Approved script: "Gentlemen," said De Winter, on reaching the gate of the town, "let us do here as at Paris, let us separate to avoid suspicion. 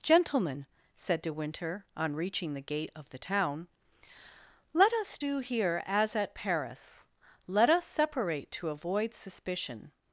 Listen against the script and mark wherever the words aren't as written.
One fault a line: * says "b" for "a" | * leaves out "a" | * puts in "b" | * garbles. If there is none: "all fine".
all fine